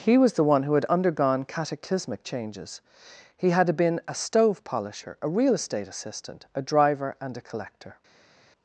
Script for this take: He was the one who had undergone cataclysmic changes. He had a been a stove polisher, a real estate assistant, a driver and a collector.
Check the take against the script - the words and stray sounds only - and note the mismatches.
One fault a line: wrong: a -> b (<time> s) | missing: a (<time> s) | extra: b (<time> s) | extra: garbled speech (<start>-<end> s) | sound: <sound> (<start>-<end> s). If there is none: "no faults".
missing: a (3.7 s)